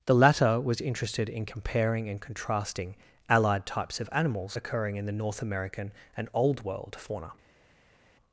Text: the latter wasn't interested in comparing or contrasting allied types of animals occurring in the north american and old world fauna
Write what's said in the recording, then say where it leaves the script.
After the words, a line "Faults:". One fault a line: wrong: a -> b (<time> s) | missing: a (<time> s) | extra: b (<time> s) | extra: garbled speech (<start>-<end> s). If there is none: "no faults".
the latter was interested in comparing and contrasting allied types of animals occurring in the north american and old world fauna
Faults:
wrong: wasn't -> was (0.6 s)
wrong: or -> and (2.1 s)